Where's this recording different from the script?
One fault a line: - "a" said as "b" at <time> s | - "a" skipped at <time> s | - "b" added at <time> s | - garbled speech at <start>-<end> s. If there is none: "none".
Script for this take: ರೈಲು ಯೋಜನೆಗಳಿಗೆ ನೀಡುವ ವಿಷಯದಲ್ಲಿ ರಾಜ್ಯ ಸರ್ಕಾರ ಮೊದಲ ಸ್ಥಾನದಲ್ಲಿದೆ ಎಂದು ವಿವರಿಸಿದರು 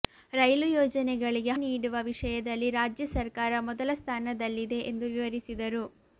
none